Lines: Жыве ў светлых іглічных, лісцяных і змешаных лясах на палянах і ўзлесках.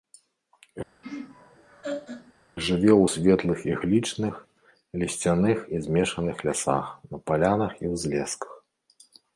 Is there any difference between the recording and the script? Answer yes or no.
no